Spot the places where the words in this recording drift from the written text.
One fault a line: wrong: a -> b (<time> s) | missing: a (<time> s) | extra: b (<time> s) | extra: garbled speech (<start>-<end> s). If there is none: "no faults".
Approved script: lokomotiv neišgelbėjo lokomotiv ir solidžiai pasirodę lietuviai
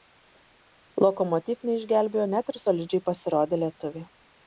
wrong: lokomotiv -> net (2.4 s)